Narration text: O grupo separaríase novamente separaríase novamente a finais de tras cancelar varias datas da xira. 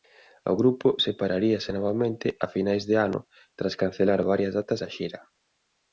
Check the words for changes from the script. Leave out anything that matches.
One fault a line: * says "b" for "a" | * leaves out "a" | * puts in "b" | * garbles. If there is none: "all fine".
* leaves out "separaríase novamente"
* puts in "ano"